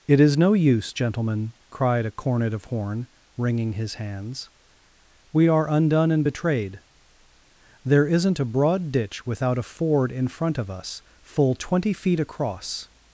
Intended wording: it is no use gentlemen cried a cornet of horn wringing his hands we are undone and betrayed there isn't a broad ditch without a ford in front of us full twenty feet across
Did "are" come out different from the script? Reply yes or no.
no